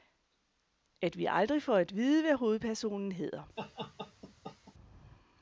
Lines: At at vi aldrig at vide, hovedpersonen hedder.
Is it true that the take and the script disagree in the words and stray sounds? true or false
true